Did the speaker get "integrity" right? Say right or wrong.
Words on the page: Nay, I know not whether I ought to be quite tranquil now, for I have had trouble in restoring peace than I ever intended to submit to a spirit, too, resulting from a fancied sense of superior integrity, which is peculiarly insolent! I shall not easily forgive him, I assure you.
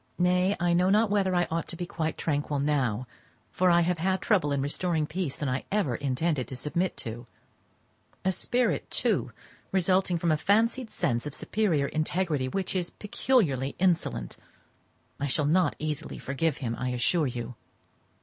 right